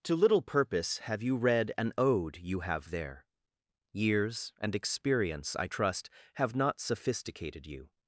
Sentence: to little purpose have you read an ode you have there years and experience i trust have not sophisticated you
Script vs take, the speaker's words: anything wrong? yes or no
no